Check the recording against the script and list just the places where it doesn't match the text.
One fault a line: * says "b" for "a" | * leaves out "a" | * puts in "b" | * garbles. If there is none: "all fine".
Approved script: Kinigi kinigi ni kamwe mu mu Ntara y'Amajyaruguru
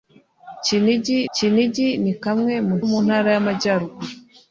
all fine